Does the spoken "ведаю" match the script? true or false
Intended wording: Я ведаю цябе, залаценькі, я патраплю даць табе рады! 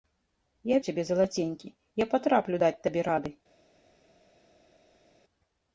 false